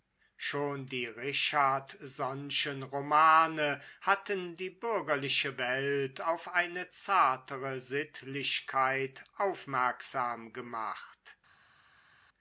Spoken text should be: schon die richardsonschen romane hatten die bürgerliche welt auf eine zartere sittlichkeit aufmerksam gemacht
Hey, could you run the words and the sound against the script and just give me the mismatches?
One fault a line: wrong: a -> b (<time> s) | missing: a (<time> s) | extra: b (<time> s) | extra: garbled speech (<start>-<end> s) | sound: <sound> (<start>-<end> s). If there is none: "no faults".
no faults